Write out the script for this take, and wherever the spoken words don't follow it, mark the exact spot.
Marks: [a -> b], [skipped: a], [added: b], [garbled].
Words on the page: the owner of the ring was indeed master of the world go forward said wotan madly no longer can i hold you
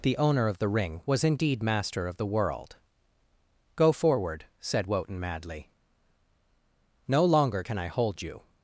the owner of the ring was indeed master of the world go forward said wotan madly no longer can i hold you